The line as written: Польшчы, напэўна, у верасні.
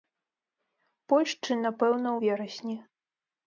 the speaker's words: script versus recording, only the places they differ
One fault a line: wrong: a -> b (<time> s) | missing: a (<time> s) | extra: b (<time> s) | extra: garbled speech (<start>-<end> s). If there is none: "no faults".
no faults